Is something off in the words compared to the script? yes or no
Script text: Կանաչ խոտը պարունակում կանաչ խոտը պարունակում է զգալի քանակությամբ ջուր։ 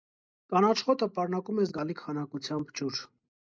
yes